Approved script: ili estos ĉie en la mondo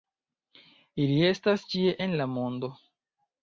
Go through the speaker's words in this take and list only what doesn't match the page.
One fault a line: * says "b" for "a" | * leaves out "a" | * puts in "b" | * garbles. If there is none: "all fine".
* says "estas" for "estos"